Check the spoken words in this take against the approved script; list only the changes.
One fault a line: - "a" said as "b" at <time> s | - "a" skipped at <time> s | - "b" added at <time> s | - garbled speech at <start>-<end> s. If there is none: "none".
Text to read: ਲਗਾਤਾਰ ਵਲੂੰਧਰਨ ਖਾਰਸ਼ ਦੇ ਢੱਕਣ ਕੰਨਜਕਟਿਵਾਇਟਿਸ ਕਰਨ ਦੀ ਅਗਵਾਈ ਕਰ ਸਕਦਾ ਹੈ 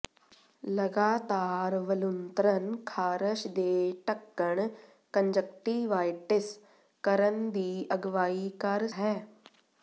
- "ਸਕਦਾ" skipped at 8.9 s